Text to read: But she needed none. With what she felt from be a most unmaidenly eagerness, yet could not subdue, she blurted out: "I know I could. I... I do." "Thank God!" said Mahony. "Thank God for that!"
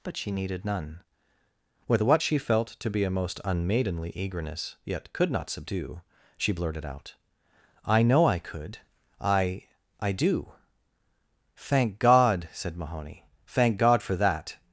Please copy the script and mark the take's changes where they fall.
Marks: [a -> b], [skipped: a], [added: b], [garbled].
But she needed none. With what she felt [from -> to] be a most unmaidenly eagerness, yet could not subdue, she blurted out: "I know I could. I... I do." "Thank God!" said Mahony. "Thank God for that!"